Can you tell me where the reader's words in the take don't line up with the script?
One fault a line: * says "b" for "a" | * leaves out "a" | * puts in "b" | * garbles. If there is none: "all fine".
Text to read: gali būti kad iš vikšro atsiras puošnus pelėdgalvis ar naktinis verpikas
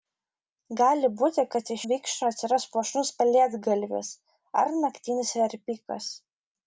all fine